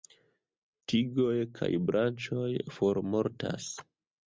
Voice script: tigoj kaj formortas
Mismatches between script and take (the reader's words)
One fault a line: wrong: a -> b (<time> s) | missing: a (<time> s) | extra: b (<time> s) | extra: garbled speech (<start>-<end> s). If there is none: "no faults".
extra: branĉoj (1.9 s)